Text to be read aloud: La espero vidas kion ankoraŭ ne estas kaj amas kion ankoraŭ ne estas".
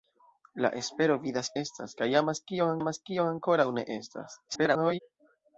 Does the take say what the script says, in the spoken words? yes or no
no